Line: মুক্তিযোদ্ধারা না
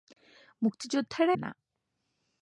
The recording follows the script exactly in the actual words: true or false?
true